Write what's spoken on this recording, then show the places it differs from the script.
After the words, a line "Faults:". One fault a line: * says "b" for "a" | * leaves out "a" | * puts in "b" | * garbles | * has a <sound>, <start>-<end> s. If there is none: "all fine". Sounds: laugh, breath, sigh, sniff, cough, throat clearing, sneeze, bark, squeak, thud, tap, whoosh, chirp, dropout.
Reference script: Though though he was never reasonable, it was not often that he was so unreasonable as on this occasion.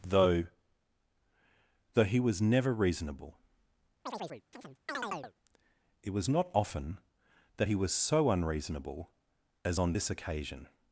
Though though he was never reasonable, it was not often that he was so unreasonable as on this occasion.
Faults:
* has a chirp, 4.1-5.3 s